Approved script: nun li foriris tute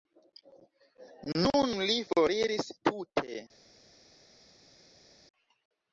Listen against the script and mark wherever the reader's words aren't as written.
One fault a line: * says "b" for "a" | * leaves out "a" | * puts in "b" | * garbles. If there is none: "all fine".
all fine